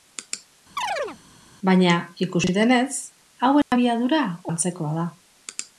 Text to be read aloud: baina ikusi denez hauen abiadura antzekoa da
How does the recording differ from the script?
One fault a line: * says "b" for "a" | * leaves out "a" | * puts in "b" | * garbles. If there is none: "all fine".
all fine